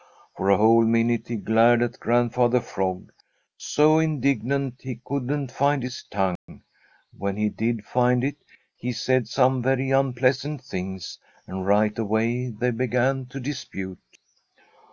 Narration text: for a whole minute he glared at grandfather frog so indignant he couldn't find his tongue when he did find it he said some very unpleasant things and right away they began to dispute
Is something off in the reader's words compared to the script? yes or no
no